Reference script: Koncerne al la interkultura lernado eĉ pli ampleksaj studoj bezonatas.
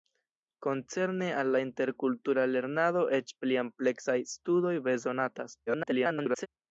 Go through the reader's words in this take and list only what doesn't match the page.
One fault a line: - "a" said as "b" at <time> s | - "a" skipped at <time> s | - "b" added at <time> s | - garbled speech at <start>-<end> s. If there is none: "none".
- garbled speech at 5.7-6.5 s